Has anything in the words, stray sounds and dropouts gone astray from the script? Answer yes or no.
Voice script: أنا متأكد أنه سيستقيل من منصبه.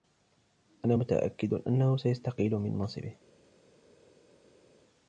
no